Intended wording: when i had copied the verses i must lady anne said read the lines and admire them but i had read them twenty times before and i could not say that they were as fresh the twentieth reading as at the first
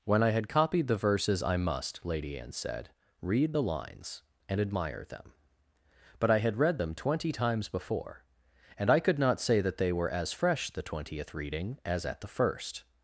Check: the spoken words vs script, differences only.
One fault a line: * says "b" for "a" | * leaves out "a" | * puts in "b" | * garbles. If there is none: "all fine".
all fine